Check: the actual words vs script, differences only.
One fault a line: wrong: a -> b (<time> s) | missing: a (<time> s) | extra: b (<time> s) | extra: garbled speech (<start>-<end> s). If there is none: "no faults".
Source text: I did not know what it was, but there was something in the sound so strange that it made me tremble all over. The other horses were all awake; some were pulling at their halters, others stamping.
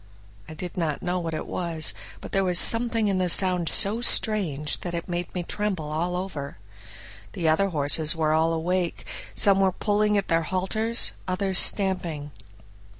no faults